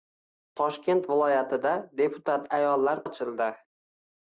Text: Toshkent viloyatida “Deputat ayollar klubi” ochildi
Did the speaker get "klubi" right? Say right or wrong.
wrong